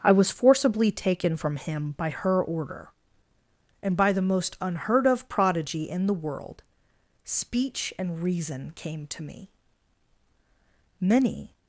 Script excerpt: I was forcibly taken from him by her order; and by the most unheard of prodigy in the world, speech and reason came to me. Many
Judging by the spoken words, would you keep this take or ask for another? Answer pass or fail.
pass